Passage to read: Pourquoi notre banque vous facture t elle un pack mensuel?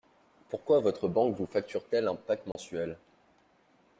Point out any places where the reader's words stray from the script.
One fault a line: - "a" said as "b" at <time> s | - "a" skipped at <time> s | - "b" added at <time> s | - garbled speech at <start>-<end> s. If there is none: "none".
- "notre" said as "votre" at 0.8 s